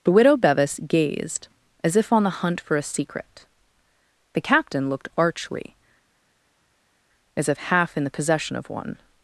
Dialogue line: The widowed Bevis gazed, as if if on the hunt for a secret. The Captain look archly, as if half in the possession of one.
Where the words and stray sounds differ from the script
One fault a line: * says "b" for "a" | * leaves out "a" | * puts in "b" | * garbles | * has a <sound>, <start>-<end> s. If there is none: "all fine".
* says "widow" for "widowed"
* leaves out "if"
* says "looked" for "look"